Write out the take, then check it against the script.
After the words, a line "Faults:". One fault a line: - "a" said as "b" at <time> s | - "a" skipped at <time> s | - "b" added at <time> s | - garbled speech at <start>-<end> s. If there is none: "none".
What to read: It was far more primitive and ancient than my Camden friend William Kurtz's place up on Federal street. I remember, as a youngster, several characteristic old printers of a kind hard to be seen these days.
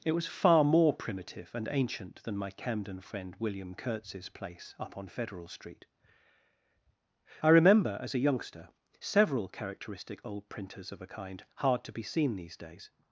It was far more primitive and ancient than my Camden friend William Kurtz's place up on Federal street. I remember, as a youngster, several characteristic old printers of a kind hard to be seen these days.
Faults:
none